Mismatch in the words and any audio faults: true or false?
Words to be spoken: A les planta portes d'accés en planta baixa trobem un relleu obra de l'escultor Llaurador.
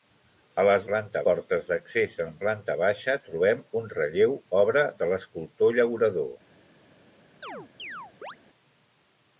true